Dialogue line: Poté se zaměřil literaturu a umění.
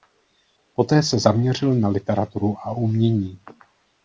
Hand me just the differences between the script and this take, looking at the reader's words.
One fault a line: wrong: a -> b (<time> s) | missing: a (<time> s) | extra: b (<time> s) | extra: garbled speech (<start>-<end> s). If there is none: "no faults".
extra: na (1.8 s)